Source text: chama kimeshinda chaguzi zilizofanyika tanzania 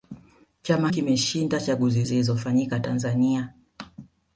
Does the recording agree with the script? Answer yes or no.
yes